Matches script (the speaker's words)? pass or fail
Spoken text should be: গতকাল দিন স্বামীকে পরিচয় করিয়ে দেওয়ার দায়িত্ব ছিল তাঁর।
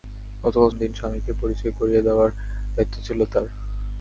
pass